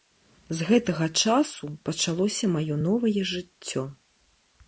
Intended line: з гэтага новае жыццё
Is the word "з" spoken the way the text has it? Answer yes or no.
yes